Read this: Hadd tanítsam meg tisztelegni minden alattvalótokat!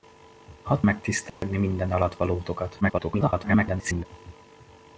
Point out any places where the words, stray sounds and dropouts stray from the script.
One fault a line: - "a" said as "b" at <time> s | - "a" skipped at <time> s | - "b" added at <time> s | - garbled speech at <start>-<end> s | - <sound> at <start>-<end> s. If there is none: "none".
- "tanítsam" skipped at 0.8 s
- dropout at 1.3-1.4 s
- garbled speech at 2.8-4.1 s